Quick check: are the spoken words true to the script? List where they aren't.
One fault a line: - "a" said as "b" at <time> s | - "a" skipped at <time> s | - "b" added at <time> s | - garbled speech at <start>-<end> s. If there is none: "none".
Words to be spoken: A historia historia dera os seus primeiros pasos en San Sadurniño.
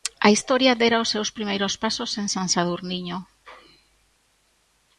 - "historia" skipped at 0.8 s